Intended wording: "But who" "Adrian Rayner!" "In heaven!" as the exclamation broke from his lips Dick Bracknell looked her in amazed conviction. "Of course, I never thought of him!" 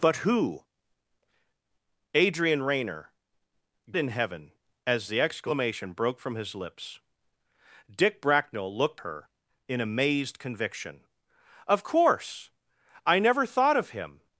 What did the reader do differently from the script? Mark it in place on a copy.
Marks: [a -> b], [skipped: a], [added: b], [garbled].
"But who" "Adrian Rayner!" "In heaven!" as the exclamation broke from his lips Dick Bracknell looked her in amazed conviction. "Of course, I never thought of him!"